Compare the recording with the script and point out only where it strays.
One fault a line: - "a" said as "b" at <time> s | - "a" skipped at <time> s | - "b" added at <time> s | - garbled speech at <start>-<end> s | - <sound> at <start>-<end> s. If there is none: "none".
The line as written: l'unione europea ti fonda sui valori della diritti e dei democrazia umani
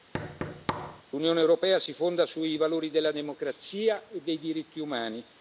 - thud at 0.1-1.0 s
- "ti" said as "si" at 1.8 s
- "diritti" said as "democrazia" at 3.1 s
- "democrazia" said as "diritti" at 4.4 s